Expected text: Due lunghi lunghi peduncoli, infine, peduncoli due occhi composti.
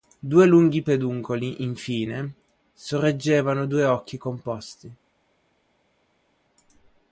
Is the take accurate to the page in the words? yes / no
no